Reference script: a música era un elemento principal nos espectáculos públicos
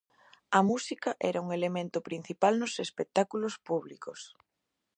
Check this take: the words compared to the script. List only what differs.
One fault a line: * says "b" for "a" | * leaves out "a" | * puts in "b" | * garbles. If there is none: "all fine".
all fine